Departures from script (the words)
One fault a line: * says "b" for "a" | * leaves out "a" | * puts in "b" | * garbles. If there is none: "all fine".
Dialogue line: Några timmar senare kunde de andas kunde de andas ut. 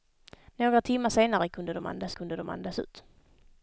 all fine